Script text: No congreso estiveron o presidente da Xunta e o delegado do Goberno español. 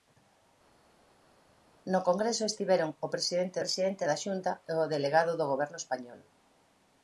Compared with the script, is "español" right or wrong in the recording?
right